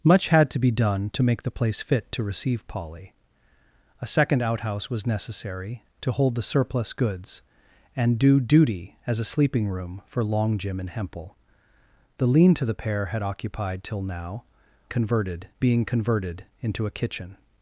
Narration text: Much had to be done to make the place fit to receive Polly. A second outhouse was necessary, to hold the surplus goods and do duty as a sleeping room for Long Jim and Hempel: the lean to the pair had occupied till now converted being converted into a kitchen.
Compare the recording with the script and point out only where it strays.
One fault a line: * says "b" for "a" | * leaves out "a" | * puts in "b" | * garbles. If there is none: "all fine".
all fine